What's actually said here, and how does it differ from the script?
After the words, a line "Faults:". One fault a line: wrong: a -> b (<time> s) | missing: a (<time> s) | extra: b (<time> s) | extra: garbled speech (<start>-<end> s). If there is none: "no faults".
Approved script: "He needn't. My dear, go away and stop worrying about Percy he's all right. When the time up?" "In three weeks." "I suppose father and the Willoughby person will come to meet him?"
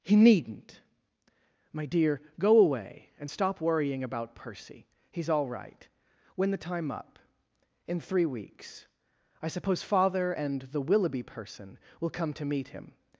"He needn't. My dear, go away and stop worrying about Percy he's all right. When the time up?" "In three weeks." "I suppose father and the Willoughby person will come to meet him?"
Faults:
no faults